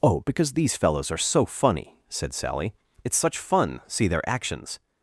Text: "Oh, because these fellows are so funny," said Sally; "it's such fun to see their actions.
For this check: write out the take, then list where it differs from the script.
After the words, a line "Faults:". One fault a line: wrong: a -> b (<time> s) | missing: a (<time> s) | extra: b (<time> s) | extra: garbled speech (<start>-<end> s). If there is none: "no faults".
"Oh, because these fellows are so funny," said Sally; "it's such fun see their actions.
Faults:
missing: to (3.8 s)